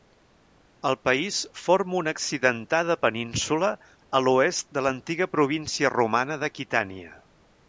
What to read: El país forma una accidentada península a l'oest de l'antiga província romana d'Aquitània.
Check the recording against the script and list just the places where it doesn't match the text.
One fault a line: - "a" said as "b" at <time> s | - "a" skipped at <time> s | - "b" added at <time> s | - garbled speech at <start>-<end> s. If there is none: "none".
none